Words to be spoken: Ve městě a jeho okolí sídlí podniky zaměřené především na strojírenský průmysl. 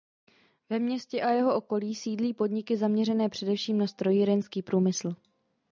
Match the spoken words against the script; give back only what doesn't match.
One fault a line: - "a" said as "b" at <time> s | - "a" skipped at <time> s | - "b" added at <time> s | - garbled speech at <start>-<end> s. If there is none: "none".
none